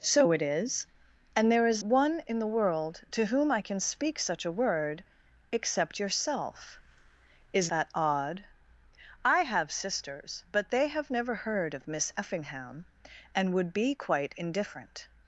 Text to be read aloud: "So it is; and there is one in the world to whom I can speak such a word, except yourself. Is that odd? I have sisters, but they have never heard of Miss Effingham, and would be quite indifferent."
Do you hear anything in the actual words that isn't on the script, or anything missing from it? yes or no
no